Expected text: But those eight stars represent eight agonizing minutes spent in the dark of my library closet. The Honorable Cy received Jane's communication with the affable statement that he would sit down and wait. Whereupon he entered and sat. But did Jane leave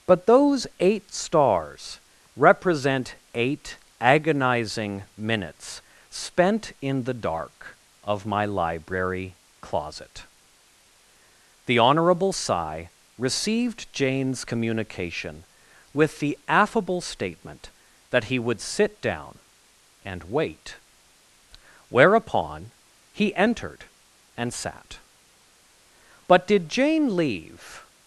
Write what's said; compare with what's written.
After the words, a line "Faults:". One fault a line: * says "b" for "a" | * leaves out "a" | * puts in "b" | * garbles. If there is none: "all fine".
But those eight stars represent eight agonizing minutes spent in the dark of my library closet. The Honorable Cy received Jane's communication with the affable statement that he would sit down and wait. Whereupon he entered and sat. But did Jane leave
Faults:
all fine